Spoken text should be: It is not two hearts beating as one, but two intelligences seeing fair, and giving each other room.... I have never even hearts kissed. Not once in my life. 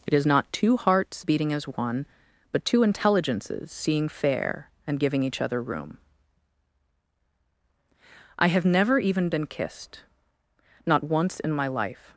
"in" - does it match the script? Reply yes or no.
yes